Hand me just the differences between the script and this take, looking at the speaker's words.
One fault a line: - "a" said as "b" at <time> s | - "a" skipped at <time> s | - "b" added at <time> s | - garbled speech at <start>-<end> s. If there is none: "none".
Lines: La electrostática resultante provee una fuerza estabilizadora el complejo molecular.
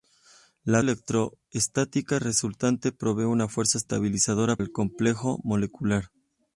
none